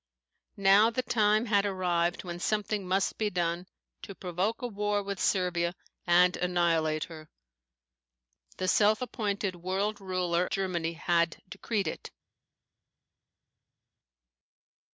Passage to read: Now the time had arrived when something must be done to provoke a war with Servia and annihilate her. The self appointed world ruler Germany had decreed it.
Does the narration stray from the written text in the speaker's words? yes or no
no